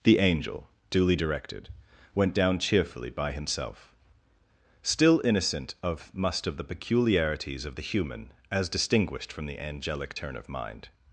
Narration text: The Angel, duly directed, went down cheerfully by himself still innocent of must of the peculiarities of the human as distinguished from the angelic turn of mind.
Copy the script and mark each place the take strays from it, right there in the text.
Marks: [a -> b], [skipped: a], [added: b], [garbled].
The Angel, duly directed, went down cheerfully by himself still innocent of must of the peculiarities of the human as distinguished from the angelic turn of mind.